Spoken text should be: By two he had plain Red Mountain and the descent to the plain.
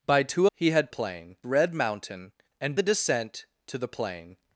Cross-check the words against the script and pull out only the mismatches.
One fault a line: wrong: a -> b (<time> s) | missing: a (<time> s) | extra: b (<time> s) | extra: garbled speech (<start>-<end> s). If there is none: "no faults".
no faults